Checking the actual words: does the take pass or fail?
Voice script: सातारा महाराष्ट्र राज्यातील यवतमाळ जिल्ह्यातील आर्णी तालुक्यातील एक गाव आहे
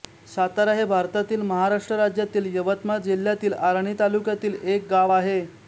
fail